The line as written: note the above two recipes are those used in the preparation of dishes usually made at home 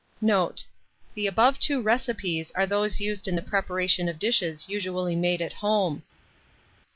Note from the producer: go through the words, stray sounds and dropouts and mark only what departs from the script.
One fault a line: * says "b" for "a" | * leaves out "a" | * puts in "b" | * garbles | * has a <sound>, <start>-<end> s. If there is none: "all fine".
all fine